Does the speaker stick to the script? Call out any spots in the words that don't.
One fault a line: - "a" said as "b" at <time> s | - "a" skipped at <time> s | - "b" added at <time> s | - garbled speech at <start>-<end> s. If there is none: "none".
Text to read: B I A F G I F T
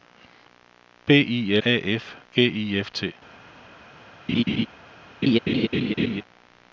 none